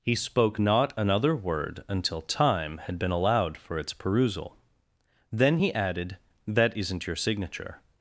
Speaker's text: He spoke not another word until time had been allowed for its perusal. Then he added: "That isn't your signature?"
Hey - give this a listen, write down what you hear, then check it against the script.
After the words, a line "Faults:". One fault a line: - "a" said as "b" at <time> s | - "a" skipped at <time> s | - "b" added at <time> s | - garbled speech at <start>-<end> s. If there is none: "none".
He spoke not another word until time had been allowed for its perusal. Then he added: "That isn't your signature?"
Faults:
none